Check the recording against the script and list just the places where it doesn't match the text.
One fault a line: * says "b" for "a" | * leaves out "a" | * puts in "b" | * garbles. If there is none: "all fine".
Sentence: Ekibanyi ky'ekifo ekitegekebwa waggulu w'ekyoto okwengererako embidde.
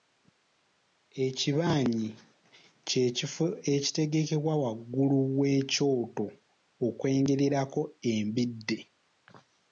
all fine